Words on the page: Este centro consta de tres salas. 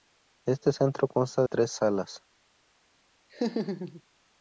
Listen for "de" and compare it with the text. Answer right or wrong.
wrong